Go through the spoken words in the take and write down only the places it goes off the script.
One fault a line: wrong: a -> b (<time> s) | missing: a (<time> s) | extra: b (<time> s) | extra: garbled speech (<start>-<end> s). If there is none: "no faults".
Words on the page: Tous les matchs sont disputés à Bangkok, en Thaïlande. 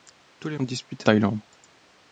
missing: matchs (0.6 s)
missing: à Bangkok en (1.1 s)